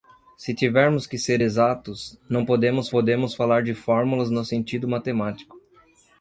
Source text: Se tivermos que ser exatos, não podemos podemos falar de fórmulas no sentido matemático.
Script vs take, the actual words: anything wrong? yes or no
no